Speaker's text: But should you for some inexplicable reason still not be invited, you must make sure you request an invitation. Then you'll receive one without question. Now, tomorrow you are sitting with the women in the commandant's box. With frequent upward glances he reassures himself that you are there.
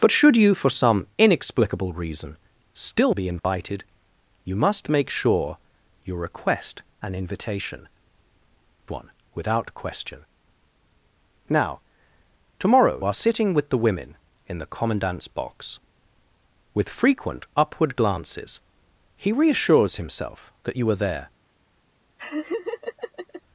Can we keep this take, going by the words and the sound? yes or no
no